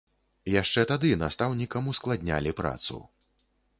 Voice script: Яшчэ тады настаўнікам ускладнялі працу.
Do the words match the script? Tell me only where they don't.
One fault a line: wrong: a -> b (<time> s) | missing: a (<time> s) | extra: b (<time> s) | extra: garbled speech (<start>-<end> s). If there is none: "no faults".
no faults